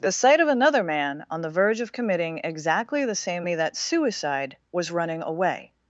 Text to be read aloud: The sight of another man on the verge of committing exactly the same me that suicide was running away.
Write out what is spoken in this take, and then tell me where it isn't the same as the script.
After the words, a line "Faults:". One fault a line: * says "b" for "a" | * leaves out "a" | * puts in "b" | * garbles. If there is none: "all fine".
The sight of another man on the verge of committing exactly the same me that suicide was running away.
Faults:
all fine